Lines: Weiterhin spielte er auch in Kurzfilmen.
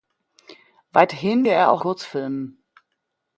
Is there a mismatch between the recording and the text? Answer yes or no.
yes